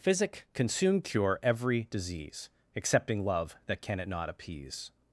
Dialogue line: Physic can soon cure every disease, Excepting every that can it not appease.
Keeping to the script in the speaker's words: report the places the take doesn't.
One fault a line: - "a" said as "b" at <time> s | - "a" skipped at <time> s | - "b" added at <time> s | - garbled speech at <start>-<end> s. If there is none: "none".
- "every" said as "love" at 3.2 s